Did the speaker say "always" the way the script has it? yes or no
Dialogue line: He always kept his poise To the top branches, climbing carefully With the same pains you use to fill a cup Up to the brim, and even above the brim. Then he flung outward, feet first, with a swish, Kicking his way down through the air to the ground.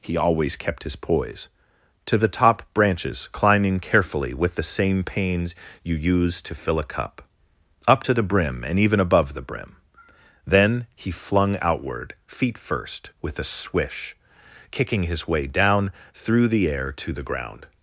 yes